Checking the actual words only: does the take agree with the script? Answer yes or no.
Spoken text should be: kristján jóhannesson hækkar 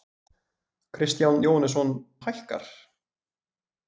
yes